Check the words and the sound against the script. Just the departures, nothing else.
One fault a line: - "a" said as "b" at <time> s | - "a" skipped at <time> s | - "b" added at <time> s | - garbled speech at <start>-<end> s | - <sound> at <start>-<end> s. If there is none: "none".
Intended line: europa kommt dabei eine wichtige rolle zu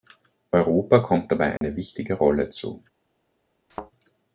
- dropout at 1.6-1.6 s
- thud at 3.7-3.9 s